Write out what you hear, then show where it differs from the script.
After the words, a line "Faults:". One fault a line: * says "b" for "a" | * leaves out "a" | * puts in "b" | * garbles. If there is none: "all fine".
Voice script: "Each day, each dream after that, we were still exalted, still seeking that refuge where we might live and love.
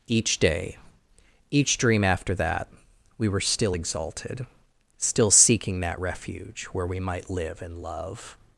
"Each day, each dream after that, we were still exalted, still seeking that refuge where we might live and love.
Faults:
all fine